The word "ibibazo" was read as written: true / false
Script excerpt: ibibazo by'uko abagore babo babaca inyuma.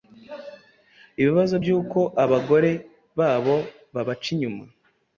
true